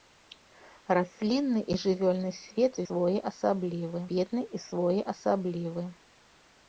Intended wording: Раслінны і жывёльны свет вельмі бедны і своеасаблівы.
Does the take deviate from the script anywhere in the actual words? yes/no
yes